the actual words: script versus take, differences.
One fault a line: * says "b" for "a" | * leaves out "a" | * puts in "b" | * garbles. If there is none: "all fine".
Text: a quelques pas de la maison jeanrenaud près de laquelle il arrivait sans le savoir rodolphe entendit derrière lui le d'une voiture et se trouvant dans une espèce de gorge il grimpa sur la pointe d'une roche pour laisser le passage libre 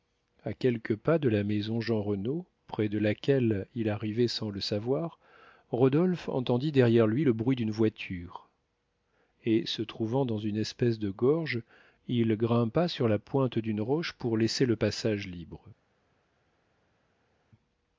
* puts in "bruit"